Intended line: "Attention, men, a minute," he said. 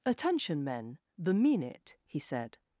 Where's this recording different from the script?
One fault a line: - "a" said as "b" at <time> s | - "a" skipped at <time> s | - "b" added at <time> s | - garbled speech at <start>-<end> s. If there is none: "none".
- "a" said as "the" at 1.2 s